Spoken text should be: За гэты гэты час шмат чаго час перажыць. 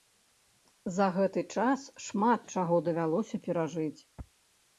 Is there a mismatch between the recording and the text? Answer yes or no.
yes